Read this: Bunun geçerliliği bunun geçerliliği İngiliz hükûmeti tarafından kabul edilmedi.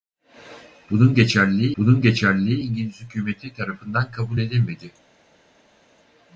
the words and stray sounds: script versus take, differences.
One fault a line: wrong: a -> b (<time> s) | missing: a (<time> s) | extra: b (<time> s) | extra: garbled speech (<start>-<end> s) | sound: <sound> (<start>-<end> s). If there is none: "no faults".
no faults